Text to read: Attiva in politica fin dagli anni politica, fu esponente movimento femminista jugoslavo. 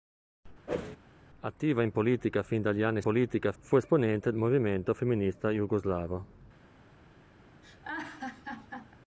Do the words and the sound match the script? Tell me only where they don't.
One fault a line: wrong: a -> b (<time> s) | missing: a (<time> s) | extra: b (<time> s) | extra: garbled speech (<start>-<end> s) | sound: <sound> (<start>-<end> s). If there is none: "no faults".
sound: whoosh (0.7-1.0 s)
sound: laugh (7.6-8.9 s)